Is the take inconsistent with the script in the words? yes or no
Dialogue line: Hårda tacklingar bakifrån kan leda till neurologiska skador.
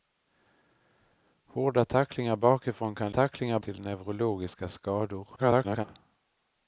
yes